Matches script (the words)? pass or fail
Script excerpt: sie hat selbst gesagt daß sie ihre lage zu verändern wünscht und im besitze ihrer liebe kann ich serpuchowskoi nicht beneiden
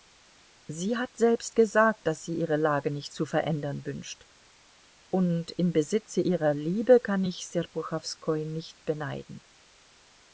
fail